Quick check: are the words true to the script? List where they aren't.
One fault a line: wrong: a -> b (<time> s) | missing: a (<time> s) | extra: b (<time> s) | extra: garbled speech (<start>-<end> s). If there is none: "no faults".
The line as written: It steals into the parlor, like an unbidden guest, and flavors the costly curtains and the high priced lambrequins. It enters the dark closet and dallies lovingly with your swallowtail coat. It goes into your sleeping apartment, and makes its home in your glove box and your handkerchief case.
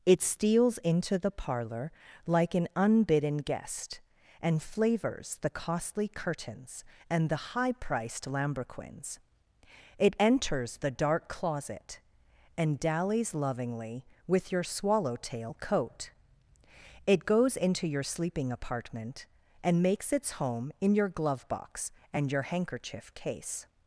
no faults